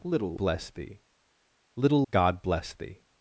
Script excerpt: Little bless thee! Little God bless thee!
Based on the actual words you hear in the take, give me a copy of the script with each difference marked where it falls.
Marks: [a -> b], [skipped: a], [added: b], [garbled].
Little bless thee! Little God bless thee!